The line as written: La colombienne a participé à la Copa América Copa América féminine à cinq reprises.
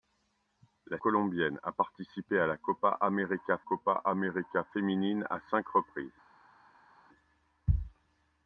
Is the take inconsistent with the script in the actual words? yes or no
no